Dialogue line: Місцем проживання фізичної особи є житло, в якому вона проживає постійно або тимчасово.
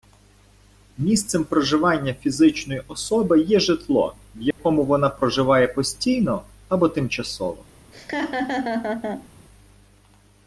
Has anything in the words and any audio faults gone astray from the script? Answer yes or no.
yes